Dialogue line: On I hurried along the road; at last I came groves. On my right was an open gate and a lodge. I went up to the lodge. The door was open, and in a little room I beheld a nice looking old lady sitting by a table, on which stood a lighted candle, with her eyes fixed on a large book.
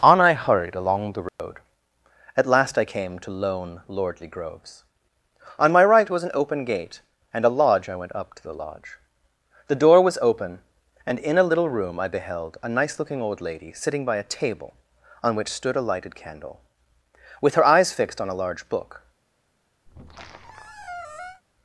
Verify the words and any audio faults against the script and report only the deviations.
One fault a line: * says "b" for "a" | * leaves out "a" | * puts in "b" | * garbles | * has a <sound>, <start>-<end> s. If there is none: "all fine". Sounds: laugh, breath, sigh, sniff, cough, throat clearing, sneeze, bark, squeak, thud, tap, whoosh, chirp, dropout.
* has a dropout, 1.3-1.4 s
* puts in "to lone lordly"
* has a squeak, 19.9-21.4 s